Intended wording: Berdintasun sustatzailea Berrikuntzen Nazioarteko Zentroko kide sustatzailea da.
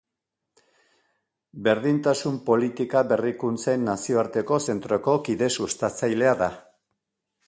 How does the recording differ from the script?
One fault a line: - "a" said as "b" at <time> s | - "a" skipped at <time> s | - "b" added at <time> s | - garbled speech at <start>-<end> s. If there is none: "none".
- "sustatzailea" said as "politika" at 2.5 s